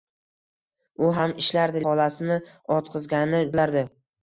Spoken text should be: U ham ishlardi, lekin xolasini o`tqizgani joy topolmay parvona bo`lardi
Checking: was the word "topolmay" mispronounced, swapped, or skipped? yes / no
yes